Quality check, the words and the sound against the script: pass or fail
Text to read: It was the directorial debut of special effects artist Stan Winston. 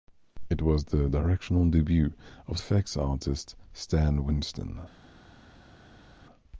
fail